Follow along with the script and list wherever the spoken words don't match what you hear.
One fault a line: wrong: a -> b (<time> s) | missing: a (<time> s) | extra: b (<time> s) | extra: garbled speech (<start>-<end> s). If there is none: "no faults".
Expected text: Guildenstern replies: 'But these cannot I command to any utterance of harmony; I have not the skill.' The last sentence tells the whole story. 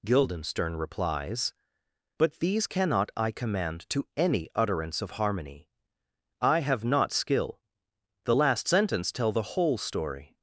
missing: the (7.1 s)
wrong: tells -> tell (9.1 s)